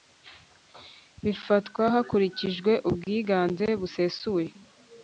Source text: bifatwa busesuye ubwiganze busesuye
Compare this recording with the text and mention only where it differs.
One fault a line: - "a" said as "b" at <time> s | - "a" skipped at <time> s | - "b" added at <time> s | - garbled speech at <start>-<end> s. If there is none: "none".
- "busesuye" said as "hakurikijwe" at 1.9 s